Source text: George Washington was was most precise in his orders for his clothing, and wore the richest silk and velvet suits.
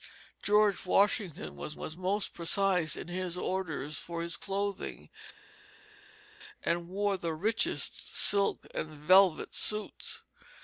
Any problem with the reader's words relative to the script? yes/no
no